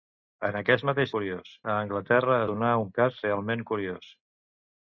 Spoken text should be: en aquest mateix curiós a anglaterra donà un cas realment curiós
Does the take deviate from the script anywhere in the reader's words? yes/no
no